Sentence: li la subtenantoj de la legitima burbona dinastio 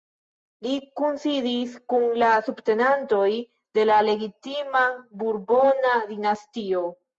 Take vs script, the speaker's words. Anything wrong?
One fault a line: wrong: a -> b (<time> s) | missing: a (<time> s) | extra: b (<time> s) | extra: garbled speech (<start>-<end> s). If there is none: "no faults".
extra: kunsidis kun (1.0 s)